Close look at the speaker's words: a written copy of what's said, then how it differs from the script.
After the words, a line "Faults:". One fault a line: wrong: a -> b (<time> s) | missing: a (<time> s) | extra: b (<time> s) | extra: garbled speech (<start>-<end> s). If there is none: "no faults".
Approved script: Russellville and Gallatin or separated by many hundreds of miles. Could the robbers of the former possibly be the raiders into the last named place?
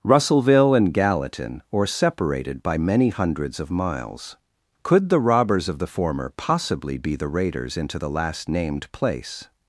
Russellville and Gallatin or separated by many hundreds of miles. Could the robbers of the former possibly be the raiders into the last named place?
Faults:
no faults